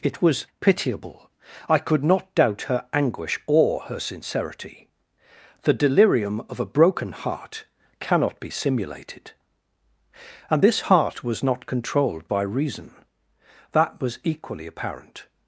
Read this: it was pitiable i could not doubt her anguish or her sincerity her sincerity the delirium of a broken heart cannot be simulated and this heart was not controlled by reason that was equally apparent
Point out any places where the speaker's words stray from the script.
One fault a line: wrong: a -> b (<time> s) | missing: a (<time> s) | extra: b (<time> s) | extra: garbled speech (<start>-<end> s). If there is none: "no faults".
missing: her sincerity (4.9 s)